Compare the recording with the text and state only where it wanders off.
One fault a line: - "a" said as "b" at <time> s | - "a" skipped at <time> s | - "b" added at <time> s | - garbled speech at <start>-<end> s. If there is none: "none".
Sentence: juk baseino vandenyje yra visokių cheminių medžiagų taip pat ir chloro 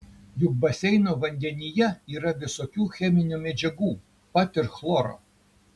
- "taip" skipped at 3.9 s